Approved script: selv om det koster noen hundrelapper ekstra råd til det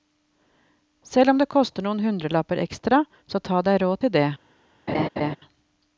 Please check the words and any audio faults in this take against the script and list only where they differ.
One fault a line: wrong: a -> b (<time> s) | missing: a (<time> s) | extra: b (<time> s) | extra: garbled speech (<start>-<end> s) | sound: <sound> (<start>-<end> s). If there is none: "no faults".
extra: så ta deg (3.3 s)
sound: laugh (4.9-5.4 s)